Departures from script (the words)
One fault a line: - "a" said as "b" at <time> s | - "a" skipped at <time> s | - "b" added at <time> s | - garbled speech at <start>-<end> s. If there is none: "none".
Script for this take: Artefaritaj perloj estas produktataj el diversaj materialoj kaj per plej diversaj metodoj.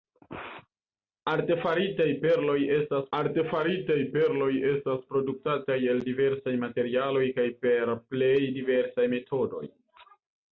- "artefaritaj perloj estas" added at 3.2 s